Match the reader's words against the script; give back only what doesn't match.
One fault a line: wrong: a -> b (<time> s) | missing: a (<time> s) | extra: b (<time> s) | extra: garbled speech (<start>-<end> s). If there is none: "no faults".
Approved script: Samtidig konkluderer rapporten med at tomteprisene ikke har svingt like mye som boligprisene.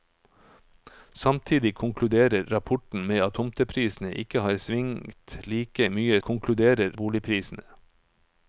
wrong: som -> konkluderer (6.2 s)